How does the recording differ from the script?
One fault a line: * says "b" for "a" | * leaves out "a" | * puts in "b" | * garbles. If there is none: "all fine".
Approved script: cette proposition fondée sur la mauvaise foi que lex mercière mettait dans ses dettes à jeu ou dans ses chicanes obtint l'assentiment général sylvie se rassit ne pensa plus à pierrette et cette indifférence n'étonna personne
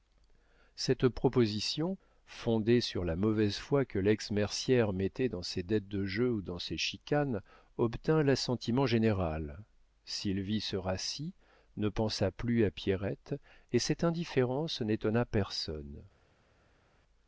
* says "de" for "à"